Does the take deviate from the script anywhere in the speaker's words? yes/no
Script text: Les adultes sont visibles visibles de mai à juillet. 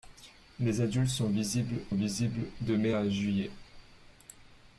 no